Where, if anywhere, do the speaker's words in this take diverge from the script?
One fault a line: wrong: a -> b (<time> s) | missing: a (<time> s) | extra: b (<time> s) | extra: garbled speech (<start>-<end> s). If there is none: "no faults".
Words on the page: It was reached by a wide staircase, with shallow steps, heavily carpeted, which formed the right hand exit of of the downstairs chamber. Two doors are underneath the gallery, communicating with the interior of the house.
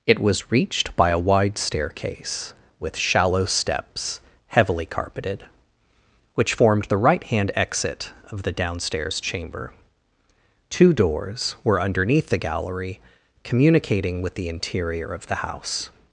missing: of (8.4 s)
wrong: are -> were (11.6 s)